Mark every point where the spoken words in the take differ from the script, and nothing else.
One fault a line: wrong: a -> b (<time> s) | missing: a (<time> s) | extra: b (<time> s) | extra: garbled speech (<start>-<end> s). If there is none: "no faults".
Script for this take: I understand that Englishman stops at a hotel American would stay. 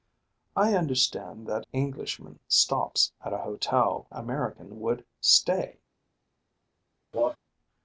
no faults